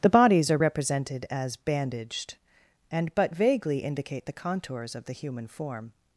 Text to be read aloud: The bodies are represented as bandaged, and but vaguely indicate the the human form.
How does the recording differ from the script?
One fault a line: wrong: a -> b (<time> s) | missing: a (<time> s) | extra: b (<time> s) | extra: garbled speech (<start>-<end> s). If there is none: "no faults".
extra: contours of (4.3 s)